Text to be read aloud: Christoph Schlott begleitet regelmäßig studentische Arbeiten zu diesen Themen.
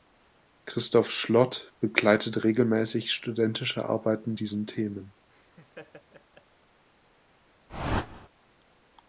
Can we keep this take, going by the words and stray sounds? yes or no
no